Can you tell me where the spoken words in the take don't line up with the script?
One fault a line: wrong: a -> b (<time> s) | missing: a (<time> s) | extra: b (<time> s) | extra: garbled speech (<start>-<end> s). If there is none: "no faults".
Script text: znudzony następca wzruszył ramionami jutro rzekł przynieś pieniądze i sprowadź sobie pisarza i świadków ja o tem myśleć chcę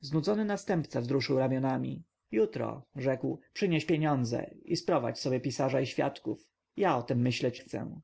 no faults